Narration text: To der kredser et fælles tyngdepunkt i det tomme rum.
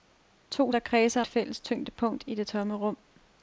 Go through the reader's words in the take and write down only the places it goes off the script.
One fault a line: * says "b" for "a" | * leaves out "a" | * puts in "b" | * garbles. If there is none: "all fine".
all fine